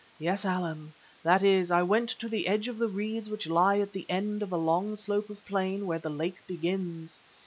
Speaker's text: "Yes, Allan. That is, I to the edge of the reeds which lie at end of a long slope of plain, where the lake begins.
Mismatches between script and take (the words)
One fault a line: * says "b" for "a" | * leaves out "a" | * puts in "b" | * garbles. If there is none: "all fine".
* puts in "went"
* puts in "the"